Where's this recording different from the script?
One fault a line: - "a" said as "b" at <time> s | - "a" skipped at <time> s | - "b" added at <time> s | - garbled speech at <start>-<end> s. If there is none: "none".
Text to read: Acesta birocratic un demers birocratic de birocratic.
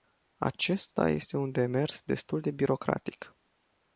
- "birocratic" said as "este" at 1.1 s
- "birocratic" said as "destul" at 2.0 s